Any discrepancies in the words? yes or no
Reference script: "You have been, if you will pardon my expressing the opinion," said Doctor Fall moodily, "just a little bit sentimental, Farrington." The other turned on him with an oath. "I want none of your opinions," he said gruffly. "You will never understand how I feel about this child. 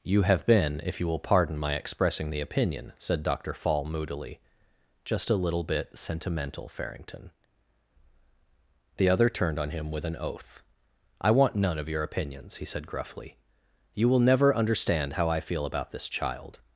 no